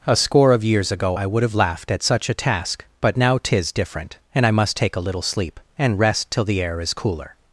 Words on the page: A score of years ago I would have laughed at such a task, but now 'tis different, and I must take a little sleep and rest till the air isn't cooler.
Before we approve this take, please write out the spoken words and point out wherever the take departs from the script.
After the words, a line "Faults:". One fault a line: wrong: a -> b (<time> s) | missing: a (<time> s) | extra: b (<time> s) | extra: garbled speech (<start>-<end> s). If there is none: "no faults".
A score of years ago I would have laughed at such a task, but now 'tis different, and I must take a little sleep and rest till the air is cooler.
Faults:
wrong: isn't -> is (6.8 s)